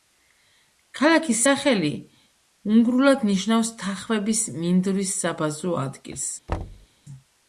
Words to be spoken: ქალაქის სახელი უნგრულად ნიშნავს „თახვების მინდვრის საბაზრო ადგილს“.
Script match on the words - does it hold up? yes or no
yes